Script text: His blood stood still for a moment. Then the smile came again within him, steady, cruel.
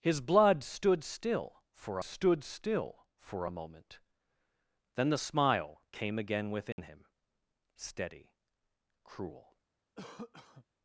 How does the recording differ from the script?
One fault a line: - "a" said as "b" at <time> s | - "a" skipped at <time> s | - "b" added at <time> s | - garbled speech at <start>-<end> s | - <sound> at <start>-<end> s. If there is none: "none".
- "stood still for" added at 2.0 s
- dropout at 6.7-6.8 s
- cough at 10.0-10.7 s